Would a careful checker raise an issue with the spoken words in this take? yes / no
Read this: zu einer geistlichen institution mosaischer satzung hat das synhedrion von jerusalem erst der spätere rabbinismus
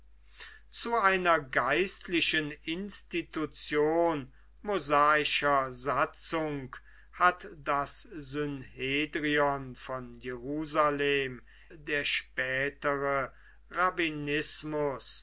yes